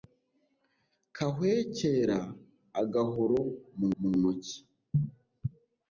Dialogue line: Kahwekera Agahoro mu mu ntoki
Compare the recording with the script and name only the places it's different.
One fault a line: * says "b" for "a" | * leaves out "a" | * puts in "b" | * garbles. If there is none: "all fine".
all fine